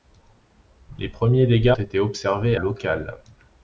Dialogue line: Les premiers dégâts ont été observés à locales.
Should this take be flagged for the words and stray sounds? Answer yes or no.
yes